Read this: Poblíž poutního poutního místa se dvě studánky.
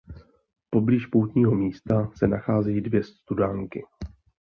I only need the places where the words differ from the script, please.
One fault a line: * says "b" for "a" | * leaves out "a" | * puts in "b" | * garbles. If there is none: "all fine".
* leaves out "poutního"
* puts in "nacházejí"